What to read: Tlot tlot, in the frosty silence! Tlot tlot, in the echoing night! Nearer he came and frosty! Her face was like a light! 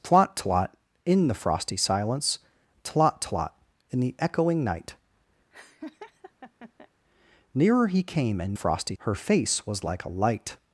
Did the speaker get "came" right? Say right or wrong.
right